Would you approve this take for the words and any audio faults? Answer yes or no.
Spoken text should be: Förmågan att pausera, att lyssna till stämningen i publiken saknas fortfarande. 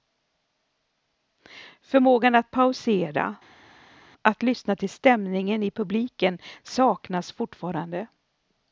yes